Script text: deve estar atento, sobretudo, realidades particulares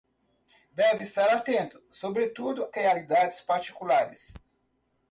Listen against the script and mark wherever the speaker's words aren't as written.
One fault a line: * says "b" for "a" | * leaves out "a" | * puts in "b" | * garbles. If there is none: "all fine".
all fine